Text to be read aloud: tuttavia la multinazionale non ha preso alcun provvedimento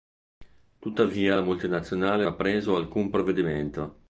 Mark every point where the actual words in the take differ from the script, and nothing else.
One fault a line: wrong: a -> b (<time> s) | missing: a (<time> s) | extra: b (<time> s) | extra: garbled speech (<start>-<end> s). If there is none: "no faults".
missing: non (2.3 s)